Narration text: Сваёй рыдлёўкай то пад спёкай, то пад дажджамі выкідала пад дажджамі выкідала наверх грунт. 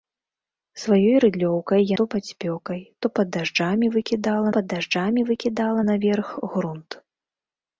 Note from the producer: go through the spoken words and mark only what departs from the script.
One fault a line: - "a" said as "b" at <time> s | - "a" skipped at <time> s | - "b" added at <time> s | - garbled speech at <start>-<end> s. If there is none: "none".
none